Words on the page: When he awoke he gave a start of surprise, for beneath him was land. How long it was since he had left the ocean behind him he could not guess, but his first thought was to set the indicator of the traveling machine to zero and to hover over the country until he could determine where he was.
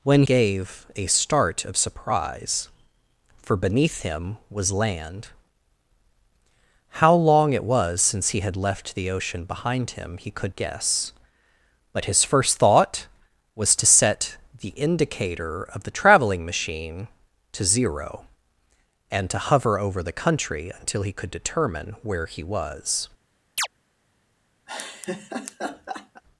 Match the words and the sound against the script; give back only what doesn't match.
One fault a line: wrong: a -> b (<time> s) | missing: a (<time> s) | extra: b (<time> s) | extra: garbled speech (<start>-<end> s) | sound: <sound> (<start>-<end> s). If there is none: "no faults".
missing: he awoke he (0.2 s)
missing: not (10.6 s)
sound: chirp (23.6-23.7 s)
sound: laugh (24.7-26.2 s)